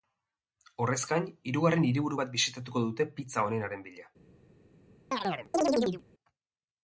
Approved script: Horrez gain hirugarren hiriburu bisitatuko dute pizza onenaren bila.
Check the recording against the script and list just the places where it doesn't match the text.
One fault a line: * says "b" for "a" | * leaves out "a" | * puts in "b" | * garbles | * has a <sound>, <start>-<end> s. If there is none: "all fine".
* puts in "bat"
* has a chirp, 5.1-6.0 s